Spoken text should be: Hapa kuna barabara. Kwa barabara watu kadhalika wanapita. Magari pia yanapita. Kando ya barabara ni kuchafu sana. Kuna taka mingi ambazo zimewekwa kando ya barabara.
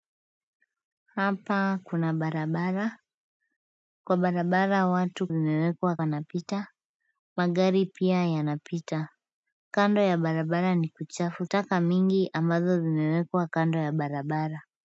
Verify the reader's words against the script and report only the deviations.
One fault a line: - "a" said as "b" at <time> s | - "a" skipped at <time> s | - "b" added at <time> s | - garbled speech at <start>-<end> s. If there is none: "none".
- "kadhalika" said as "zimewekwa" at 5.3 s
- "sana Kuna" skipped at 11.5 s